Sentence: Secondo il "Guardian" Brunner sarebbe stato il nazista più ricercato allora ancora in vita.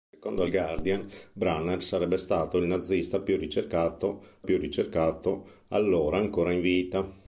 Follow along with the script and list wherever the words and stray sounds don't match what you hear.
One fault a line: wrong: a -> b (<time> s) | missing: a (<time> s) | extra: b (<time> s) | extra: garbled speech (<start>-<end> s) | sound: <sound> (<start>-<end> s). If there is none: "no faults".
extra: più ricercato (4.4 s)